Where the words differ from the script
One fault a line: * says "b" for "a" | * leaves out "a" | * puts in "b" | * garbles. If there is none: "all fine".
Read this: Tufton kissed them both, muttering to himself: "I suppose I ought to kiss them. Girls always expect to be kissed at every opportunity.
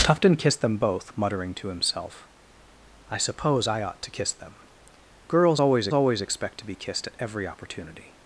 * puts in "always"